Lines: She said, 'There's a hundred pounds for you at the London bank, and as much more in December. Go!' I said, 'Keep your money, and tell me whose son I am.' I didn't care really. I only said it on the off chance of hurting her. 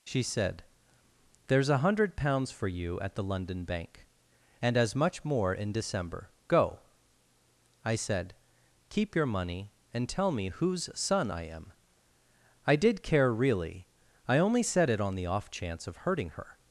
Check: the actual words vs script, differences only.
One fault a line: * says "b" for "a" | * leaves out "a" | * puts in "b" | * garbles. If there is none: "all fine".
* says "did" for "didn't"